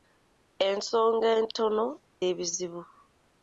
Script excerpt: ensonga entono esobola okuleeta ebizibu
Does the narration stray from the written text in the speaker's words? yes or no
yes